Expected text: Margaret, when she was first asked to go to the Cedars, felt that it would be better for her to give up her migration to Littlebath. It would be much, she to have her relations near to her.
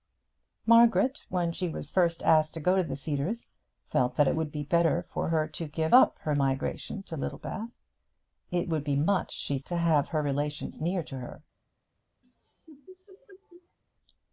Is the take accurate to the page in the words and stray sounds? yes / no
no